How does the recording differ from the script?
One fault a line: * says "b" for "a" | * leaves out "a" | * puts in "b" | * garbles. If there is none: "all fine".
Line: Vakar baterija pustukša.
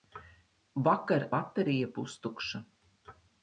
all fine